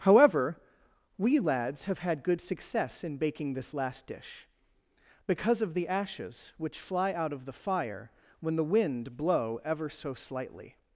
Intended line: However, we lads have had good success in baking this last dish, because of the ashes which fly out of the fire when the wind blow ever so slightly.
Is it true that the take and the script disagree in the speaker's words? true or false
false